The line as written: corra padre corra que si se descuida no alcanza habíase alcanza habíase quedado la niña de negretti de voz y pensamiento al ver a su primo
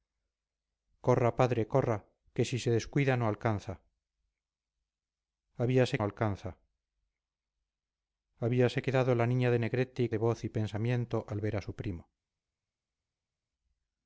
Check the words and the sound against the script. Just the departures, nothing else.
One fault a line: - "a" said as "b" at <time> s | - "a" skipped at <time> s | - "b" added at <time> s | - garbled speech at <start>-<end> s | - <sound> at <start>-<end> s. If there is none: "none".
none